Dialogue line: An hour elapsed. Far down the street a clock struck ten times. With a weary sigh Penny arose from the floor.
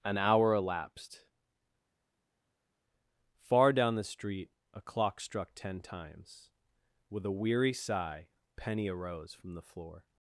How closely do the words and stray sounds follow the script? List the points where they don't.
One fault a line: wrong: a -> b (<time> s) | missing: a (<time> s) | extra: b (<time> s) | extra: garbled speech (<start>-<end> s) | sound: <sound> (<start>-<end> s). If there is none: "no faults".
no faults